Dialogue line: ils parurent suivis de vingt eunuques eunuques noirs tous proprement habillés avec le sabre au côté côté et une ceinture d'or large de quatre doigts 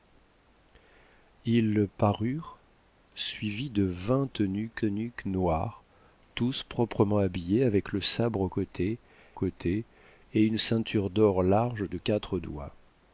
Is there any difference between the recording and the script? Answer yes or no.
no